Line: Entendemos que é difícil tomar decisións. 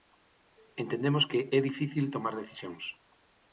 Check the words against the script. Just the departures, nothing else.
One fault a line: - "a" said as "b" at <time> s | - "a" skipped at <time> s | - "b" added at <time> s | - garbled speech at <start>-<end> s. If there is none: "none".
none